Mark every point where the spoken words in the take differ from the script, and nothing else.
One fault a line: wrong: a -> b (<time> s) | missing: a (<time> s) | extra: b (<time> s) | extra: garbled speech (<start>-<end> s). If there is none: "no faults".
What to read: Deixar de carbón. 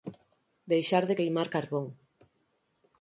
extra: queimar (1.2 s)